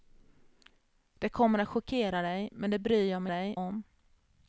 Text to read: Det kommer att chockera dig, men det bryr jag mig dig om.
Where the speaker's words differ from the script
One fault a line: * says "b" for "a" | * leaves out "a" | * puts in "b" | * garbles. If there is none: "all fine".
all fine